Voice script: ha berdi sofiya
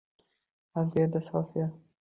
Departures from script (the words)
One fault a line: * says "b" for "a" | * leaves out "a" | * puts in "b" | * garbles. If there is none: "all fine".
all fine